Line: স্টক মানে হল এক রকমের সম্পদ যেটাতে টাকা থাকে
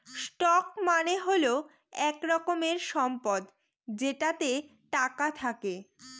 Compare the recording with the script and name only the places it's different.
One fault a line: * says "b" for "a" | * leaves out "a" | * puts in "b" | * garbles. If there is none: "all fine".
all fine